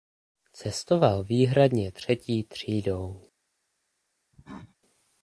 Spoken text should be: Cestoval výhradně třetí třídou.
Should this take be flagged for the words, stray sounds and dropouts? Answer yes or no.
yes